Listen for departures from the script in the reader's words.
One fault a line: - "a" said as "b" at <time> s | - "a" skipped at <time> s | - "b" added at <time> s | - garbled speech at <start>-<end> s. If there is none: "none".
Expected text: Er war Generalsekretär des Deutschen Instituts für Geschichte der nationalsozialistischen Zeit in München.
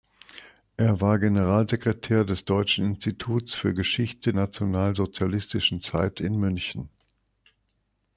- "der" skipped at 4.3 s